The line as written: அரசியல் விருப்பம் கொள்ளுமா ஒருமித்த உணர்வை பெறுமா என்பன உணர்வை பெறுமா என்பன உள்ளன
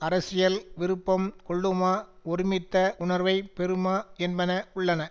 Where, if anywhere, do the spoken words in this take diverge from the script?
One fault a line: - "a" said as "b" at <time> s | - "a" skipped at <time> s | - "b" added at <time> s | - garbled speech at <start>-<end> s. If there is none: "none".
- "உணர்வை பெறுமா என்பன" skipped at 4.5 s